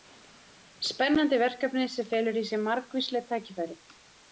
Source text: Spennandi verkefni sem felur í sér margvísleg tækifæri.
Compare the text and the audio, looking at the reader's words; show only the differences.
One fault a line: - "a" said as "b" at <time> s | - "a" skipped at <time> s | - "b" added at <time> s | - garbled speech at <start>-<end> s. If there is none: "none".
none